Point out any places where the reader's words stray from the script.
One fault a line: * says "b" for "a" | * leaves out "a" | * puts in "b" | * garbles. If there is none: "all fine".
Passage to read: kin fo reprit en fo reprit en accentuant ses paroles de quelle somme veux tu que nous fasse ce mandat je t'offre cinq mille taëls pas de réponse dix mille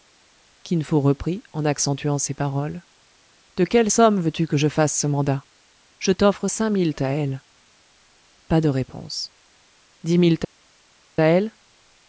* leaves out "fo reprit en"
* says "je" for "nous"